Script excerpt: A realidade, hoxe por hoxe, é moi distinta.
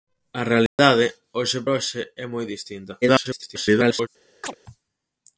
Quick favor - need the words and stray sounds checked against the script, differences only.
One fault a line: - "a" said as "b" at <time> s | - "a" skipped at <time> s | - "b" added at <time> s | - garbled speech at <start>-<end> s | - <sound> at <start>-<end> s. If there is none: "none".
- dropout at 0.7-0.8 s
- "por" skipped at 1.6 s
- garbled speech at 3.0-4.1 s
- chirp at 4.4-4.5 s